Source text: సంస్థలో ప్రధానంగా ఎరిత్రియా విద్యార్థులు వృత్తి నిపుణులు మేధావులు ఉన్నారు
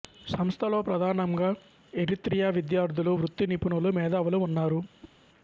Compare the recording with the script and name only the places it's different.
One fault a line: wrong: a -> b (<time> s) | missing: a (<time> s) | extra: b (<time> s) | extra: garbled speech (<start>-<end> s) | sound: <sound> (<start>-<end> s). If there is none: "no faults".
sound: whoosh (5.0-5.1 s)